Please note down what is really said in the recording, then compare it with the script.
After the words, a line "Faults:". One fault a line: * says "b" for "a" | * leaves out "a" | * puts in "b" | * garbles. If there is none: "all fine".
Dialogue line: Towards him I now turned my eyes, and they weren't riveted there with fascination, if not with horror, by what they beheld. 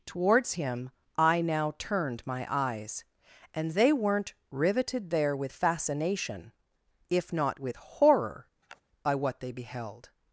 Towards him I now turned my eyes, and they weren't riveted there with fascination, if not with horror, by what they beheld.
Faults:
all fine